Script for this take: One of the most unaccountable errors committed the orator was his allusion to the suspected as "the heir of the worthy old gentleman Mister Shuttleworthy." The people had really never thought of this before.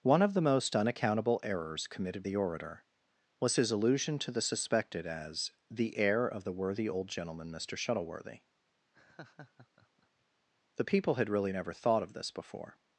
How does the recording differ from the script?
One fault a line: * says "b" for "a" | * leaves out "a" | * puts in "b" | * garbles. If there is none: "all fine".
all fine